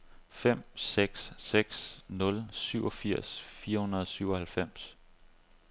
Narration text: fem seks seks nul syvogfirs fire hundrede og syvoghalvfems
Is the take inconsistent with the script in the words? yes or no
no